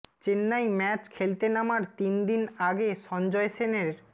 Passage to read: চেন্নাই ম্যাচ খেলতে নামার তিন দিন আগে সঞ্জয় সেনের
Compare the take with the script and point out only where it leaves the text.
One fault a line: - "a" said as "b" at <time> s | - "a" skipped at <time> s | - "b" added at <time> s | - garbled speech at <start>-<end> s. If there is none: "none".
none